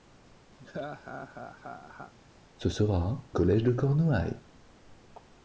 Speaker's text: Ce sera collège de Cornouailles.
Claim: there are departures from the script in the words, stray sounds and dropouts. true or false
true